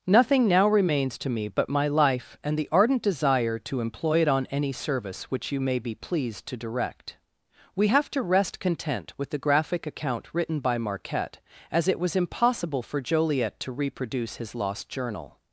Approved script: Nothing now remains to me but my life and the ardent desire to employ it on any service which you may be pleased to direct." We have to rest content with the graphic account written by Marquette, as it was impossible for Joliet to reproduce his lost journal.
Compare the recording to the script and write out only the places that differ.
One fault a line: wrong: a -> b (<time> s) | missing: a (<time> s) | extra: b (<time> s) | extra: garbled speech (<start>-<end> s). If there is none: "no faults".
no faults